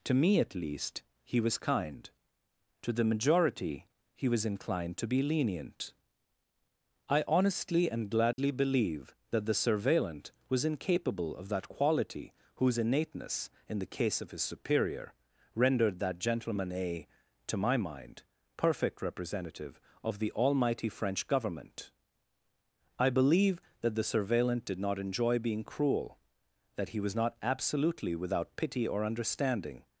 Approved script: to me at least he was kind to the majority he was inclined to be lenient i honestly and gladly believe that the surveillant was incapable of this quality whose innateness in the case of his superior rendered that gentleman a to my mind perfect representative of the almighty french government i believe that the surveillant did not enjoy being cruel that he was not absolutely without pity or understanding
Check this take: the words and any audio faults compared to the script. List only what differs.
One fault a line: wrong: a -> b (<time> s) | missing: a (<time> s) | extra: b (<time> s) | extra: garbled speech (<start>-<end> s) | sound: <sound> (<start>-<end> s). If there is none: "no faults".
sound: dropout (8.3-8.4 s)
wrong: this -> that (11.5 s)